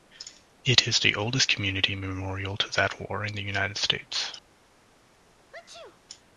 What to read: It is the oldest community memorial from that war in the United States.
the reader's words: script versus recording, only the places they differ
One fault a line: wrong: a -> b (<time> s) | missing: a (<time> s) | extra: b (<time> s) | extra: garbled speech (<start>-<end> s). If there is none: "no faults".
wrong: from -> to (2.6 s)